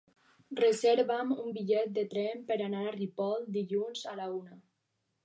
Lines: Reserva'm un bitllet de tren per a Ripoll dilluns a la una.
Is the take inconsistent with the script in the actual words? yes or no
yes